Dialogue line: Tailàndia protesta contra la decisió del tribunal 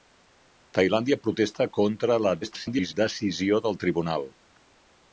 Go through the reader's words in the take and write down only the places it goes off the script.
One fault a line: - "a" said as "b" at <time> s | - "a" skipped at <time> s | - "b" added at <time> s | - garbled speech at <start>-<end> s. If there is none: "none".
- garbled speech at 2.4-2.9 s